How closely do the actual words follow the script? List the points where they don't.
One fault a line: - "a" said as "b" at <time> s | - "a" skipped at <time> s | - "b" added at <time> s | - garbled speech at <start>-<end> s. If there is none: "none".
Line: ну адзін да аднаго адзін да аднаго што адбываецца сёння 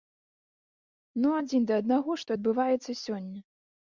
- "адзін да аднаго" skipped at 2.1 s